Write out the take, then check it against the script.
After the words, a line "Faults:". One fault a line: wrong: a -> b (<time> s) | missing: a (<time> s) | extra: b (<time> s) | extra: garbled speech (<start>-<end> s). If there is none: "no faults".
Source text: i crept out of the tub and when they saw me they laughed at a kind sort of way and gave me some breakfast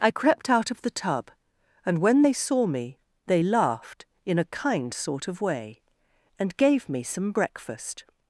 i crept out of the tub and when they saw me they laughed in a kind sort of way and gave me some breakfast
Faults:
wrong: at -> in (4.3 s)